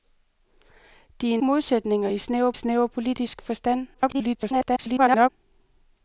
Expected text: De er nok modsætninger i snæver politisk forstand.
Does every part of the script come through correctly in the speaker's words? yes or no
no